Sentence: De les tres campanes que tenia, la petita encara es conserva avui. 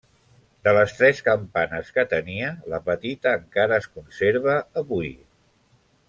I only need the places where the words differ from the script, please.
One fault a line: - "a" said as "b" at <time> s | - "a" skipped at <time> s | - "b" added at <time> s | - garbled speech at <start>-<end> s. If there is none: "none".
none